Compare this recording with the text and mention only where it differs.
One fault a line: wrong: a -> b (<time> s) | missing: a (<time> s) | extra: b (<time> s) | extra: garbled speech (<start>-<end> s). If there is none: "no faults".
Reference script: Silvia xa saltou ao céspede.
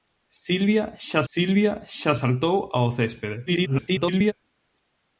extra: silvia xa (1.3 s)
extra: garbled speech (3.5-4.3 s)